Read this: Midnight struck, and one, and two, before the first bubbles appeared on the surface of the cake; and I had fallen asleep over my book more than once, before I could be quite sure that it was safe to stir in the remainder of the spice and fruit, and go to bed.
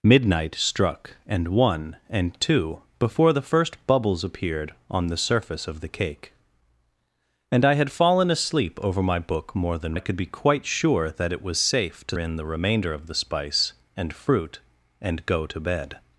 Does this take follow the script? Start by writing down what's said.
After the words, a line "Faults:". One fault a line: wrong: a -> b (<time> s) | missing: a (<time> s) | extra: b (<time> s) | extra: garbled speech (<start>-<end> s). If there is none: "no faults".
Midnight struck, and one, and two, before the first bubbles appeared on the surface of the cake; and I had fallen asleep over my book more than I could be quite sure that it was safe to in the remainder of the spice and fruit, and go to bed.
Faults:
missing: once before (10.0 s)
missing: stir (12.2 s)